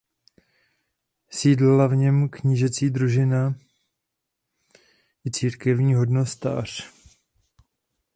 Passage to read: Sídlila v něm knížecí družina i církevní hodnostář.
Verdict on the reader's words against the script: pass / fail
pass